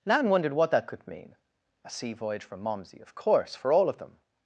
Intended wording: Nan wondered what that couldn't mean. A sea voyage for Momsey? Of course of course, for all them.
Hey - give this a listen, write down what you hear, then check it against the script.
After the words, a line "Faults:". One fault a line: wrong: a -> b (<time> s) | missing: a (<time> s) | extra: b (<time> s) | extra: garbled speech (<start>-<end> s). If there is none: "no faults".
Nan wondered what that could mean. A sea voyage for Momsey? Of course, for all of them.
Faults:
wrong: couldn't -> could (0.9 s)
missing: of course (3.5 s)
extra: of (3.9 s)